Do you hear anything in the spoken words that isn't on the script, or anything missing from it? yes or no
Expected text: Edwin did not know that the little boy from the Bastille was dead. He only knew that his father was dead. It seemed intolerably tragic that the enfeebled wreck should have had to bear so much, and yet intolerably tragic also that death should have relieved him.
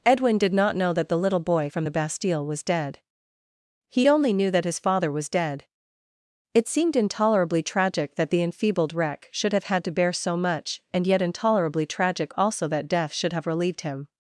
no